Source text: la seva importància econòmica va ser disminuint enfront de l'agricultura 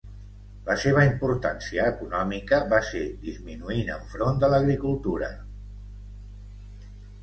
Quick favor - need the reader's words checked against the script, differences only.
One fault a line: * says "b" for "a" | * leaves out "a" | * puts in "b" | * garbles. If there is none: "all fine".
all fine